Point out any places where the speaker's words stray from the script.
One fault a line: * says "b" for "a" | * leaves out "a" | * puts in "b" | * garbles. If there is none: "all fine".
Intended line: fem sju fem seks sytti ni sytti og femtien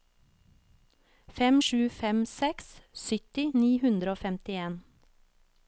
* says "hundre" for "sytti"